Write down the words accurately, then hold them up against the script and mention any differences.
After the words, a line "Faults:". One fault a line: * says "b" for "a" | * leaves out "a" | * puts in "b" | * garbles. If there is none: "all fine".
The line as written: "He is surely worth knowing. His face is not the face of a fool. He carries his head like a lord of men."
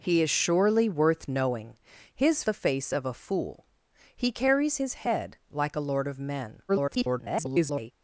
"He is surely worth knowing. His the face of a fool. He carries his head like a lord of men." [garbled]
Faults:
* leaves out "face is not"
* garbles